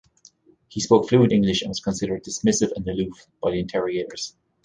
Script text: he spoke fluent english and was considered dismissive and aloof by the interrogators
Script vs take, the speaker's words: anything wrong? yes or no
no